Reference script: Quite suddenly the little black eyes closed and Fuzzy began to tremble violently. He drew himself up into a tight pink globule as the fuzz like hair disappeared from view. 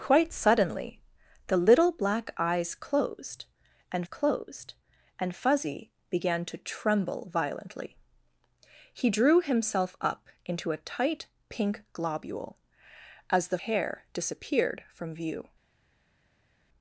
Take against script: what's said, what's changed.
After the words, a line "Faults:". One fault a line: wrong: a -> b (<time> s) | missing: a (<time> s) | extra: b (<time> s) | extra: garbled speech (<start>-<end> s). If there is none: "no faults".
Quite suddenly the little black eyes closed and closed and Fuzzy began to tremble violently. He drew himself up into a tight pink globule as the hair disappeared from view.
Faults:
extra: closed and (4.0 s)
missing: fuzz like (13.6 s)